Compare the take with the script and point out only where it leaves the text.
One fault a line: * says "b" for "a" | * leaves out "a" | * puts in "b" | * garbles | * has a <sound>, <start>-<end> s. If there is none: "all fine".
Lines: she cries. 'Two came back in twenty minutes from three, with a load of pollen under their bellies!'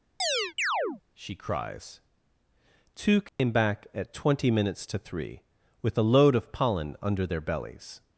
* has a chirp, 0.2-1.0 s
* has a dropout, 3.3-3.4 s
* says "at" for "in"
* says "to" for "from"